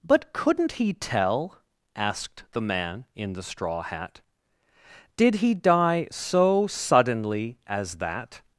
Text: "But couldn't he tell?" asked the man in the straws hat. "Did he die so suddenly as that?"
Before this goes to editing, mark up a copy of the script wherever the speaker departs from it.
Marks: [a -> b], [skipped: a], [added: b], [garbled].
"But couldn't he tell?" asked the man in the [straws -> straw] hat. "Did he die so suddenly as that?"